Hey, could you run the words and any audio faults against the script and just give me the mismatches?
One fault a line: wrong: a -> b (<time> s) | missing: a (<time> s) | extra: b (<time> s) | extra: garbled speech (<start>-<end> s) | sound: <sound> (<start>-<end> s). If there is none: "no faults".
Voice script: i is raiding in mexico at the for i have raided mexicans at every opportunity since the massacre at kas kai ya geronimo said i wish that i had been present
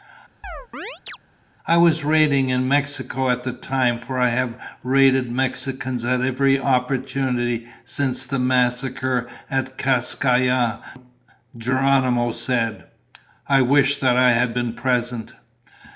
sound: chirp (0.4-1.2 s)
wrong: is -> was (1.8 s)
extra: time (3.5 s)